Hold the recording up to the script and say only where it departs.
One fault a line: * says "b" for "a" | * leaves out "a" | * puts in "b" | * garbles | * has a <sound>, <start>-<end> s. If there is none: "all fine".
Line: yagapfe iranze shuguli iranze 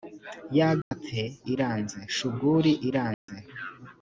* has a dropout, 0.8-0.9 s
* has a dropout, 3.1-3.3 s